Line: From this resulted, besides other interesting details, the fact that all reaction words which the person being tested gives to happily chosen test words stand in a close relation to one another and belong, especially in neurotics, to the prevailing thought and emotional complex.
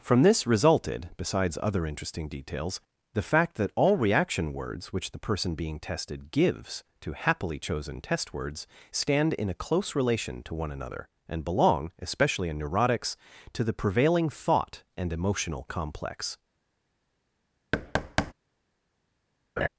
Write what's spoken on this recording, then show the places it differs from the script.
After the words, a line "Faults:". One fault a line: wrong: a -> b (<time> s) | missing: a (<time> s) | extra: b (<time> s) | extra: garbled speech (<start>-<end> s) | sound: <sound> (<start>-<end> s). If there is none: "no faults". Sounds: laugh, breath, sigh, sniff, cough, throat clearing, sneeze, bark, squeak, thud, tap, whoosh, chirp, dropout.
From this resulted, besides other interesting details, the fact that all reaction words which the person being tested gives to happily chosen test words stand in a close relation to one another and belong, especially in neurotics, to the prevailing thought and emotional complex.
Faults:
sound: thud (17.7-18.3 s)
sound: laugh (19.6-19.7 s)